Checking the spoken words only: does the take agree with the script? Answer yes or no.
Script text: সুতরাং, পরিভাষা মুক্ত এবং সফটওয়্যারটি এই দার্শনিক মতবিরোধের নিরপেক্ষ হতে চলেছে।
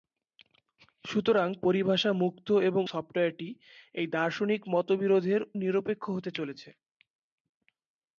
yes